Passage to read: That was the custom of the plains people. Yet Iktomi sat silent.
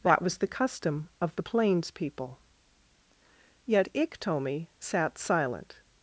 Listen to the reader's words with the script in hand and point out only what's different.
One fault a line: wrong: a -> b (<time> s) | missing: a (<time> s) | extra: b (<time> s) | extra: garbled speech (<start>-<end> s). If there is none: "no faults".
no faults